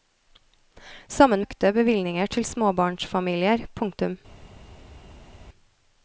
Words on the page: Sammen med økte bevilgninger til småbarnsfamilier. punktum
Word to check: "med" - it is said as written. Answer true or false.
false